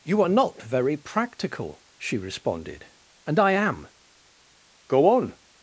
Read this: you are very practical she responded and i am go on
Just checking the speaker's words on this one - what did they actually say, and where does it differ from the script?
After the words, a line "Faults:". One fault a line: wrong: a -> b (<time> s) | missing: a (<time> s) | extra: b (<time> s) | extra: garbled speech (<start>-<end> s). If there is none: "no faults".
you are not very practical she responded and i am go on
Faults:
extra: not (0.3 s)